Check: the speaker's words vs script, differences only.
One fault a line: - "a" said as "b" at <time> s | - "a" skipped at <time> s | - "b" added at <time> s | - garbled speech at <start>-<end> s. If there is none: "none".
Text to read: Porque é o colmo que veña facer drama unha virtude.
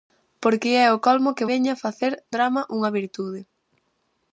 none